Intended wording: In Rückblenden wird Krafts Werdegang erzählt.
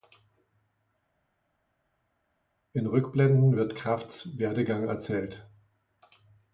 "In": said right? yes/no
yes